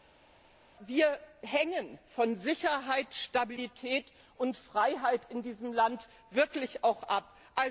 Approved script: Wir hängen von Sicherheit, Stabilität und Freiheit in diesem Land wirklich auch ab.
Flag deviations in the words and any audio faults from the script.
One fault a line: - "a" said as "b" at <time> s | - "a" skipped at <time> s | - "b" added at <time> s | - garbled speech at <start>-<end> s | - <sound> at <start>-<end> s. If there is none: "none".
none